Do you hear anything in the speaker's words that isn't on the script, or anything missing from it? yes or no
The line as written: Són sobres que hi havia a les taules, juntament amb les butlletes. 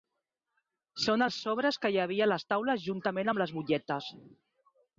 yes